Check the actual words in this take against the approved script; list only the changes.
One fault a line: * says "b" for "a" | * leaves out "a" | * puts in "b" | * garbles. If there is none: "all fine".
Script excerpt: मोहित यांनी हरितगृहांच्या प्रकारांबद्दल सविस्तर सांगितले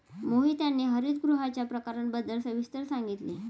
all fine